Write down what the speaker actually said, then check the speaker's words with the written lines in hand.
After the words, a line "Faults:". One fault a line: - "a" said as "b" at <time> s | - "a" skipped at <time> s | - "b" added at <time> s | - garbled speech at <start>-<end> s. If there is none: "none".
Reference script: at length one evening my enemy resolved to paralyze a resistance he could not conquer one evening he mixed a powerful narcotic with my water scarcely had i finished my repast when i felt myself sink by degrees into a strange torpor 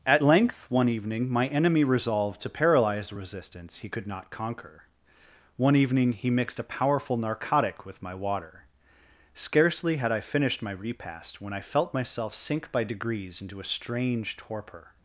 at length one evening my enemy resolved to paralyze a resistance he could not conquer one evening he mixed a powerful narcotic with my water scarcely had i finished my repast when i felt myself sink by degrees into a strange torpor
Faults:
none